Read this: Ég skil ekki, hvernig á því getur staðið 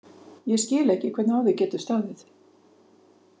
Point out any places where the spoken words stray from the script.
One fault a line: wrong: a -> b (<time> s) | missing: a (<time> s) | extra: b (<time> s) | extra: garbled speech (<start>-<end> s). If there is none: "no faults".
no faults